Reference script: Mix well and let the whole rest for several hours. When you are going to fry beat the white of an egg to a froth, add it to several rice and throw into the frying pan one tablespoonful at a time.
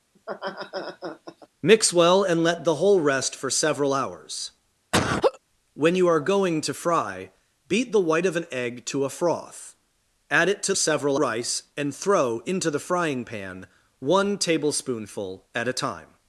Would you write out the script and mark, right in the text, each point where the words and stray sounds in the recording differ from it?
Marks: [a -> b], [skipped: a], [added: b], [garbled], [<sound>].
[laugh] Mix well and let the whole rest for several hours. [laugh] When you are going to fry beat the white of an egg to a froth, add it to several rice and throw into the frying pan one tablespoonful at a time.